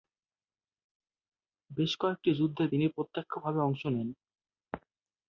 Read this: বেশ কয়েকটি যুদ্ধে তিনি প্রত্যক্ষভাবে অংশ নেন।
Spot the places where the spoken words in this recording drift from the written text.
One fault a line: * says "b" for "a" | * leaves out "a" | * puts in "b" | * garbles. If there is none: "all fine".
all fine